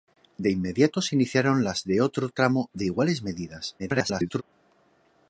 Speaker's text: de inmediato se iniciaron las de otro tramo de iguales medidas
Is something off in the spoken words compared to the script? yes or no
yes